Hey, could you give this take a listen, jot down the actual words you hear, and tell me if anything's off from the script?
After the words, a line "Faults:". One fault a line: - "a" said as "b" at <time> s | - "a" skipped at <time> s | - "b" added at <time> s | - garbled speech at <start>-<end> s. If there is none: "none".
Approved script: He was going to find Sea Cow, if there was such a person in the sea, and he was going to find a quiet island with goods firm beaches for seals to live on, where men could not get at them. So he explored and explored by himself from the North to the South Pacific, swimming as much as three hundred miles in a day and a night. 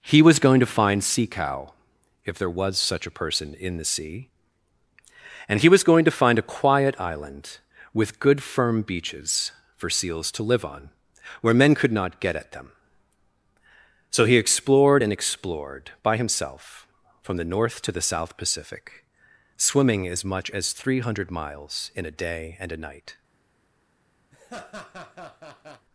He was going to find Sea Cow, if there was such a person in the sea, and he was going to find a quiet island with good firm beaches for seals to live on, where men could not get at them. So he explored and explored by himself from the North to the South Pacific, swimming as much as three hundred miles in a day and a night.
Faults:
- "goods" said as "good" at 8.2 s